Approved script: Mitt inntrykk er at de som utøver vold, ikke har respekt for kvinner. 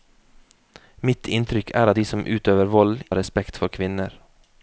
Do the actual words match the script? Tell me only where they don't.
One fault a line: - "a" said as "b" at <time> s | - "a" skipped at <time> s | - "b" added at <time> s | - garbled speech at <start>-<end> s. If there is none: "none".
- "ikke" skipped at 3.0 s